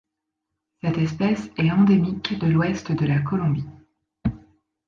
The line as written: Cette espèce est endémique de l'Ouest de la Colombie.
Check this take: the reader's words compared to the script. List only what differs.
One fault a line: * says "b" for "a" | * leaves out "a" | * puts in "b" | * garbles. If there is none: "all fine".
all fine